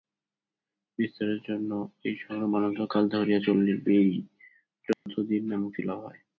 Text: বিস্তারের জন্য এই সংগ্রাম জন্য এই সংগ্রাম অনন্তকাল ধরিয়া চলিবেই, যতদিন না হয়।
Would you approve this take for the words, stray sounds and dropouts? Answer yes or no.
no